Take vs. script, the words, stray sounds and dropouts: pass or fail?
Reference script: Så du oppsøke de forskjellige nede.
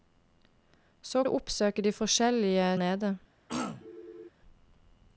fail